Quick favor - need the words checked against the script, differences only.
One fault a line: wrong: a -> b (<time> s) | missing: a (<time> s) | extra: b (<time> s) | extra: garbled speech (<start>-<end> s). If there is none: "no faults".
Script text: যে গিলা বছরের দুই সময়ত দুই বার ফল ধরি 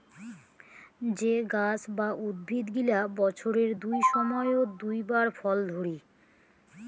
extra: গাছ বা উদ্ভিদ (1.5 s)